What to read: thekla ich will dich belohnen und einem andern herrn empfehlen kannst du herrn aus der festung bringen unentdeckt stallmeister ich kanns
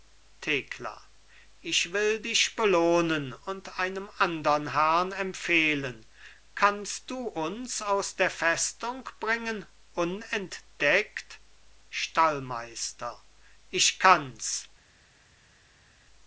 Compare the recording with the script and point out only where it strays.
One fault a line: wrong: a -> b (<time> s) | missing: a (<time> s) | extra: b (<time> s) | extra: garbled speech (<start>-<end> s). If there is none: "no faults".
wrong: herrn -> uns (7.3 s)